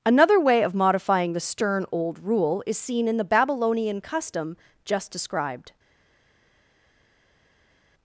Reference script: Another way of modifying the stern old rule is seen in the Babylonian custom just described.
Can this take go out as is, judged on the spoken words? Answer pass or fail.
pass